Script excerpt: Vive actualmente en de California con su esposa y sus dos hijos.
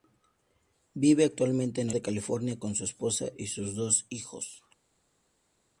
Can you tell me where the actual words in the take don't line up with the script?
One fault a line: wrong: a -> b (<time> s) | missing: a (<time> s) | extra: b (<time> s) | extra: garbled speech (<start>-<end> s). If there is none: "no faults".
no faults